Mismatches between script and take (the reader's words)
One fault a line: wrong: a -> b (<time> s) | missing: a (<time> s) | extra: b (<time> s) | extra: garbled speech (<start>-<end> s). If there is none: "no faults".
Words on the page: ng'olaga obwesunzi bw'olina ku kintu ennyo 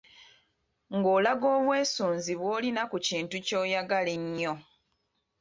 extra: ky'oyagala (3.5 s)